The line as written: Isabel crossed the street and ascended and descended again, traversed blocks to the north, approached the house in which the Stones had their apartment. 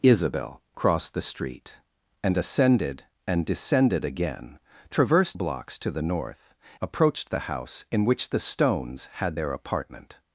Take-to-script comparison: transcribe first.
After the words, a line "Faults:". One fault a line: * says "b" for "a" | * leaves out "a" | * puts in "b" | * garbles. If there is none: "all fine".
Isabel crossed the street and ascended and descended again, traversed blocks to the north, approached the house in which the Stones had their apartment.
Faults:
all fine